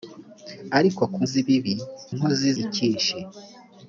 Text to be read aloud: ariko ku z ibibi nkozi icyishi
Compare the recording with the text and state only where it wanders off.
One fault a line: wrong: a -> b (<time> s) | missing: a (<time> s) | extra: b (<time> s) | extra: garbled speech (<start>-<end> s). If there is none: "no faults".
no faults